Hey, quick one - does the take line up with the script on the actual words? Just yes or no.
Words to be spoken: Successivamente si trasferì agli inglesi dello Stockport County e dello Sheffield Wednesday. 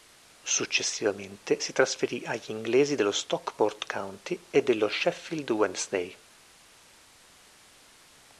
yes